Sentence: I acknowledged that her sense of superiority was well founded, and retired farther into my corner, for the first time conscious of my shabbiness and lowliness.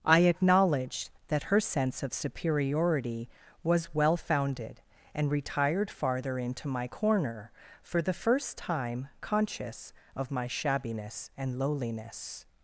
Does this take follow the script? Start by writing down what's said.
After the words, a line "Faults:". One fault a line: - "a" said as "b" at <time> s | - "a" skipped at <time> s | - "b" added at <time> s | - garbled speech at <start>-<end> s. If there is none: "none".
I acknowledged that her sense of superiority was well founded, and retired farther into my corner, for the first time conscious of my shabbiness and lowliness.
Faults:
none